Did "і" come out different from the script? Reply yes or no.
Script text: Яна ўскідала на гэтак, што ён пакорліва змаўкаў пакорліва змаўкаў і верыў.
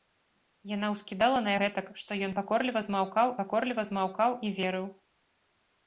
no